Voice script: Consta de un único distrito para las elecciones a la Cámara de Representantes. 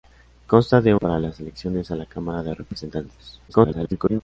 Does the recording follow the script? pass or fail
fail